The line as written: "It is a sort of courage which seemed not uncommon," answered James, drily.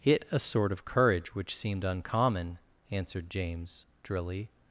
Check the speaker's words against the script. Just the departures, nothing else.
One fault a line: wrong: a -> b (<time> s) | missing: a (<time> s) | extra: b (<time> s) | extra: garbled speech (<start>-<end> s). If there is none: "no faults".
missing: is (0.2 s)
missing: not (1.8 s)